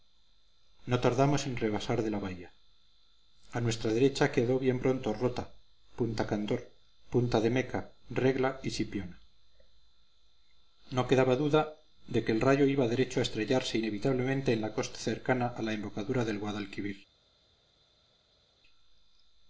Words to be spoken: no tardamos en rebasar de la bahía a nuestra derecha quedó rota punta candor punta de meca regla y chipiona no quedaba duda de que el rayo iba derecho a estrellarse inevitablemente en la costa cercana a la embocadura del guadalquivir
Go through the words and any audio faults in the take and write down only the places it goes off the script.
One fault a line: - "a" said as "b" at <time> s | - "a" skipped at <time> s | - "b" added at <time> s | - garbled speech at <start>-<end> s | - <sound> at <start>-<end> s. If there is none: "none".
- "bien pronto" added at 4.6 s